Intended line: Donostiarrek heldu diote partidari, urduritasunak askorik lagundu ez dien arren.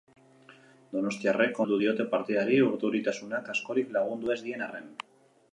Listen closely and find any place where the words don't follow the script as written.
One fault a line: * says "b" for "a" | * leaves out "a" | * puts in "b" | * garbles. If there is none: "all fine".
all fine